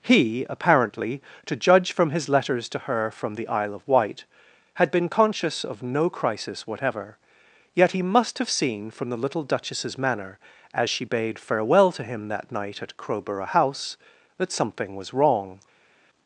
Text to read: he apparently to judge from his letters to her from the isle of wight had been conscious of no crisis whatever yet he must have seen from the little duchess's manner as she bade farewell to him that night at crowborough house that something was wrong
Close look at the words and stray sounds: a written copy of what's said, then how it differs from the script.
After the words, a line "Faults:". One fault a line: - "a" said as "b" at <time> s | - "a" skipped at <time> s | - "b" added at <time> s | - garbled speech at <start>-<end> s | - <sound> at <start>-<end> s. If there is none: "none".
he apparently to judge from his letters to her from the isle of wight had been conscious of no crisis whatever yet he must have seen from the little duchess's manner as she bade farewell to him that night at crowborough house that something was wrong
Faults:
none